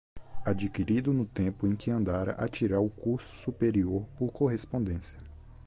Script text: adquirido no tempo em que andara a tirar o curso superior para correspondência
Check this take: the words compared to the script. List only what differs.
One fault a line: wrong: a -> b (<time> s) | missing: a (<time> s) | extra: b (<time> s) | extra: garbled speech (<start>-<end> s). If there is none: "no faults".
wrong: para -> por (4.2 s)